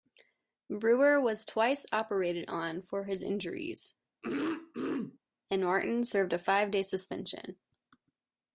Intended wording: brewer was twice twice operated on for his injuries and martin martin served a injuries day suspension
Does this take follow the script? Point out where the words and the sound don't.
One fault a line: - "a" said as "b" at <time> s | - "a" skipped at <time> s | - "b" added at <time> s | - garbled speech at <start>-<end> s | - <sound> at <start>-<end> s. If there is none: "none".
- "twice" skipped at 1.9 s
- throat clearing at 4.2-5.2 s
- "martin" skipped at 6.0 s
- "injuries" said as "five" at 6.4 s